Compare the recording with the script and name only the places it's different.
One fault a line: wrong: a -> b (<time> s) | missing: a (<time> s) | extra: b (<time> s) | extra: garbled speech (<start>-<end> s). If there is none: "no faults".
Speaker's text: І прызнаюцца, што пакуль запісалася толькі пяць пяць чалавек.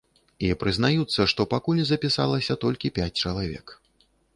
missing: пяць (3.1 s)